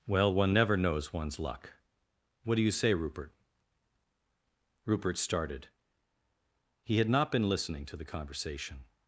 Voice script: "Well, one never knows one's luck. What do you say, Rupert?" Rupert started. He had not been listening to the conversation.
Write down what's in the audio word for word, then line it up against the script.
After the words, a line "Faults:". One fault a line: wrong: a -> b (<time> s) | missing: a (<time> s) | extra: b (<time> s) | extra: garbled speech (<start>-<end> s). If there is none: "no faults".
"Well, one never knows one's luck. What do you say, Rupert?" Rupert started. He had not been listening to the conversation.
Faults:
no faults